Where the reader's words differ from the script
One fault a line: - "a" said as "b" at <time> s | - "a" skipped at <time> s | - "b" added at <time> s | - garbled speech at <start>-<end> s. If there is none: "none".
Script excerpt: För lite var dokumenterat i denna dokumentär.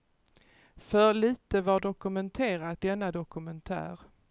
- "i" skipped at 2.9 s